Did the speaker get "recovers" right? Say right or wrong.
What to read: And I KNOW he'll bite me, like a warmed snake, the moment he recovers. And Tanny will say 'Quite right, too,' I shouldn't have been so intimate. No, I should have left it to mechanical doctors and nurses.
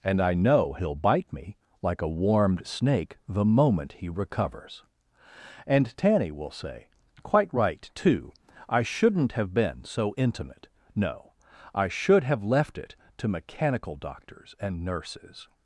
right